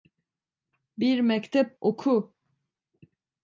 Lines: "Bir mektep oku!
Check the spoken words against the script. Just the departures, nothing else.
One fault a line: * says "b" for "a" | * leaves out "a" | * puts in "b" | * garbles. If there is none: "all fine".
all fine